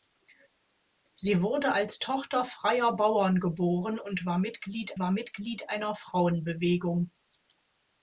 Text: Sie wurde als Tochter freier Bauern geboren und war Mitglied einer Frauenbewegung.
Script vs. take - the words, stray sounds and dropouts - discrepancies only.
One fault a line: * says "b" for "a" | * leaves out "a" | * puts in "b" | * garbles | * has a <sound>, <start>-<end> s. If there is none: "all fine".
* puts in "war Mitglied"